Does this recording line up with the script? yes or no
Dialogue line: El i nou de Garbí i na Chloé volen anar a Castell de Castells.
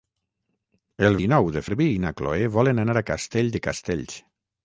yes